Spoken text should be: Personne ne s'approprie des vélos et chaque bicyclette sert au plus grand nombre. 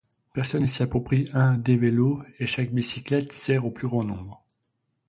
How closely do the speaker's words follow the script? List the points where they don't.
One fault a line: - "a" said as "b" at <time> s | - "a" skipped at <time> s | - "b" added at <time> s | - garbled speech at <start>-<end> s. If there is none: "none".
- "un" added at 1.3 s